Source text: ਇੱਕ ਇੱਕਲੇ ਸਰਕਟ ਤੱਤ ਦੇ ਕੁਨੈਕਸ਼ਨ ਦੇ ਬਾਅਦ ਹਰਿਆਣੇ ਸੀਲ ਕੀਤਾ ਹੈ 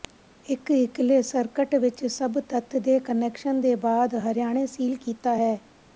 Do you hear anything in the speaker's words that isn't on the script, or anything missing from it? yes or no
yes